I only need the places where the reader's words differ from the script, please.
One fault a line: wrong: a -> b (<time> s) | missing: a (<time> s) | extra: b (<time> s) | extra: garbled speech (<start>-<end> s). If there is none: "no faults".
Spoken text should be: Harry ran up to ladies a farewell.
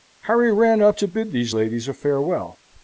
extra: bid these (1.1 s)